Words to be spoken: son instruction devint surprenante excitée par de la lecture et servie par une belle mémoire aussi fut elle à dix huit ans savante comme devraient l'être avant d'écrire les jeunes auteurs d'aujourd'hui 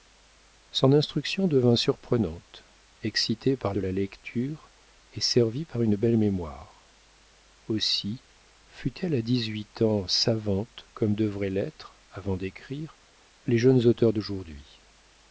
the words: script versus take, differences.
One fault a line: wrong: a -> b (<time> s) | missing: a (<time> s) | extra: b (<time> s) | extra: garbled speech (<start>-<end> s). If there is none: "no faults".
no faults